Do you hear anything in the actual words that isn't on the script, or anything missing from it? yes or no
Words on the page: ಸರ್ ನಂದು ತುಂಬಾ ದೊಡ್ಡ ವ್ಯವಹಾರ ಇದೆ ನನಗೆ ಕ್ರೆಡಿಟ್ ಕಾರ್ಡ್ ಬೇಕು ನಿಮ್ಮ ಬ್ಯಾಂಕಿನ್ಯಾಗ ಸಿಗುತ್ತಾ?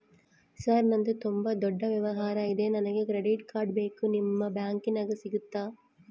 no